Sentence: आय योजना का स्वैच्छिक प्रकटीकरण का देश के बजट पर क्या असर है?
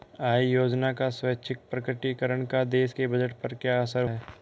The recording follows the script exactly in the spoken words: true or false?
true